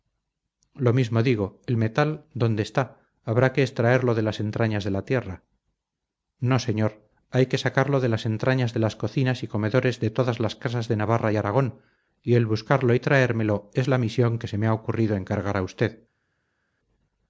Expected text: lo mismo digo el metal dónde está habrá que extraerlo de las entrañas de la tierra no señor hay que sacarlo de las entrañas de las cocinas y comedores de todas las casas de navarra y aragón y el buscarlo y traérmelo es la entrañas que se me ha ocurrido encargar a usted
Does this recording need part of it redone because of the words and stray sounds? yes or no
yes